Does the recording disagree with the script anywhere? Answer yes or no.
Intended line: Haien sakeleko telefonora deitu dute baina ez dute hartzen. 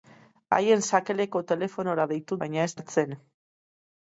yes